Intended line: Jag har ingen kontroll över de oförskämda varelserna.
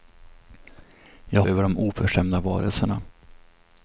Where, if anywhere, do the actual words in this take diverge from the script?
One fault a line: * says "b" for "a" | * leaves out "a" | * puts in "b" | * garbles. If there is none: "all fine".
* leaves out "har ingen kontroll"